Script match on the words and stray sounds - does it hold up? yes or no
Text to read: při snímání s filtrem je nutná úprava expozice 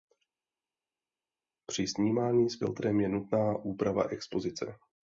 yes